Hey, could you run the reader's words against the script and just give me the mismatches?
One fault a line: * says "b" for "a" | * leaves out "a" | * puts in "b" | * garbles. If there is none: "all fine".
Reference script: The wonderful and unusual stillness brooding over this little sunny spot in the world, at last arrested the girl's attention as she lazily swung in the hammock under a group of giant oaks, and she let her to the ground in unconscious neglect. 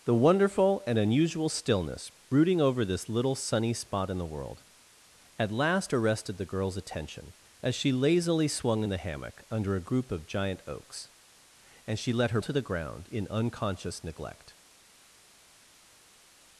all fine